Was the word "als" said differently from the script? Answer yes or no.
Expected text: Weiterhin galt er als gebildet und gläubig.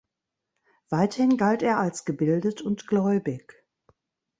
no